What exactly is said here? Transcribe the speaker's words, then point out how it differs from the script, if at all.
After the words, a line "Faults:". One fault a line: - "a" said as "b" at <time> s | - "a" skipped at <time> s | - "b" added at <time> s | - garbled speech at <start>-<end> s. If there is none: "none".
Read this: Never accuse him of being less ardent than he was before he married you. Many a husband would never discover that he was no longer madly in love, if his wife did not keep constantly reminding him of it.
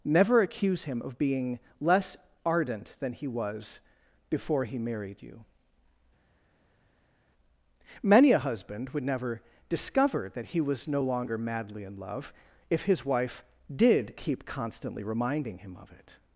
Never accuse him of being less ardent than he was before he married you. Many a husband would never discover that he was no longer madly in love, if his wife did keep constantly reminding him of it.
Faults:
- "not" skipped at 14.2 s